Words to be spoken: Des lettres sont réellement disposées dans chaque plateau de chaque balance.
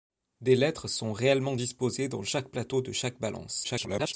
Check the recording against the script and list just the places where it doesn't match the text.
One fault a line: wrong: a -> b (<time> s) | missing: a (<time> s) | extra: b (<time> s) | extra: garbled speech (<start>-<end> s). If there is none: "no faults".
extra: garbled speech (3.6-4.1 s)